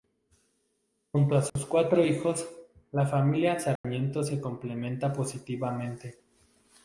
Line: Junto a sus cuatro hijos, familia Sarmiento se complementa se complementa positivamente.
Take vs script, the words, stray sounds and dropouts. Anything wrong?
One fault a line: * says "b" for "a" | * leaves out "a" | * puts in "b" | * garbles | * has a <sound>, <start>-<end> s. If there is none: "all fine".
* has a dropout, 1.5-1.6 s
* puts in "la"
* has a dropout, 3.8-3.8 s
* leaves out "se complementa"